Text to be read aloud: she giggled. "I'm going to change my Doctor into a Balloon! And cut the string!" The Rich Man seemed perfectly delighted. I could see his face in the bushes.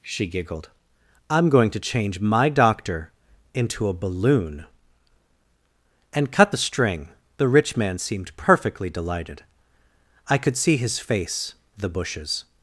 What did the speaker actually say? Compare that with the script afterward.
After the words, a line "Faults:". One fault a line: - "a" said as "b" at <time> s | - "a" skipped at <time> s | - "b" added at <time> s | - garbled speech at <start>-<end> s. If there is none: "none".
she giggled. "I'm going to change my Doctor into a Balloon! And cut the string!" The Rich Man seemed perfectly delighted. I could see his face the bushes.
Faults:
- "in" skipped at 11.5 s